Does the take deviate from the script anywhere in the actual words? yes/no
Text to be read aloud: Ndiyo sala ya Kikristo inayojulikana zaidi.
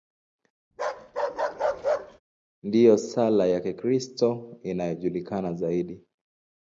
no